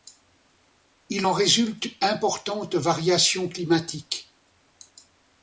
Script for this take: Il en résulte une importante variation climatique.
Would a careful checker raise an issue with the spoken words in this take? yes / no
yes